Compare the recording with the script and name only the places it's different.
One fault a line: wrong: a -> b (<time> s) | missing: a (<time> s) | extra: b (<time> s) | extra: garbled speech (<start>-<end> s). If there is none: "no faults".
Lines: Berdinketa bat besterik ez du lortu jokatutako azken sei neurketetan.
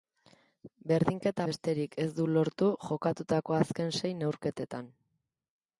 missing: bat (1.4 s)